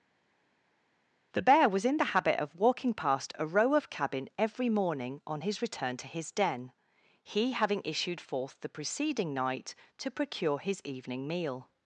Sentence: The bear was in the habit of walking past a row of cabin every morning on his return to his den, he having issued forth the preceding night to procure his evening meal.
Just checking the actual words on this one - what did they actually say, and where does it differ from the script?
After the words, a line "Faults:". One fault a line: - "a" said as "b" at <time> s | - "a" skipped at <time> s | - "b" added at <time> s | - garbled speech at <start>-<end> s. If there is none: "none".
The bear was in the habit of walking past a row of cabin every morning on his return to his den, he having issued forth the preceding night to procure his evening meal.
Faults:
none